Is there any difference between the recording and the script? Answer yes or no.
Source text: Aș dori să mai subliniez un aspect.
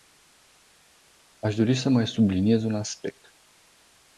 no